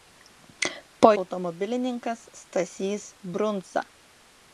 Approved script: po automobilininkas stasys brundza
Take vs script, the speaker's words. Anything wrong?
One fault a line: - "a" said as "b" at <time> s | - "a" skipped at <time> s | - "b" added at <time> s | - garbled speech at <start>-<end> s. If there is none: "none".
none